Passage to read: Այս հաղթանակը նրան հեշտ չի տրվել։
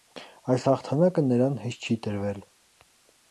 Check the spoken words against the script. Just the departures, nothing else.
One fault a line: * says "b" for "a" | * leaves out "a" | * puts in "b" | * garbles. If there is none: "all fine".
all fine